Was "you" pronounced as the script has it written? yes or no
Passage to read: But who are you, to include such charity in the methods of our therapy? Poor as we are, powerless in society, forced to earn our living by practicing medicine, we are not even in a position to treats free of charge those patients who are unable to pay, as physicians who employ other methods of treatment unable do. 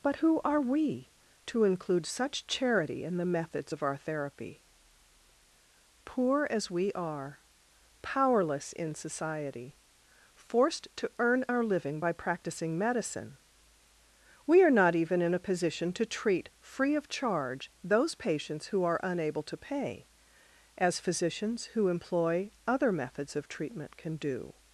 no